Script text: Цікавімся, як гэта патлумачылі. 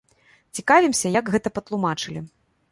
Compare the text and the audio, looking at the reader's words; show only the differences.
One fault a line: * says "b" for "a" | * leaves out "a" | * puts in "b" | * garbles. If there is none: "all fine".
all fine